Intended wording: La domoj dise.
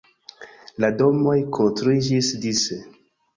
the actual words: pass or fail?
fail